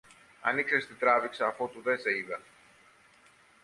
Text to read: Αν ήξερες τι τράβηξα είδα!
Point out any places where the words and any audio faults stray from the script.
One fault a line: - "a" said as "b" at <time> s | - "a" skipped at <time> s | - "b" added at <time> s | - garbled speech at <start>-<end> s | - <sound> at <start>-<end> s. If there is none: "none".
- "αφότου δε σε" added at 1.5 s